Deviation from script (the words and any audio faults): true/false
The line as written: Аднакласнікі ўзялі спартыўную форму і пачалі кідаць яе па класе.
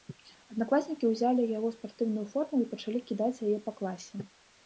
true